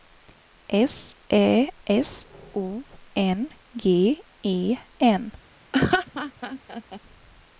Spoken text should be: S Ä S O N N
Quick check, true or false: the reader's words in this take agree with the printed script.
false